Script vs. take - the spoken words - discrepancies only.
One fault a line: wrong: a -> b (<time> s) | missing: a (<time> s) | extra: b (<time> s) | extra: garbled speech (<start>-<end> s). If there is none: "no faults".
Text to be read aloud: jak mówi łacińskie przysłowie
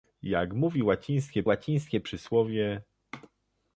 extra: łacińskie (1.4 s)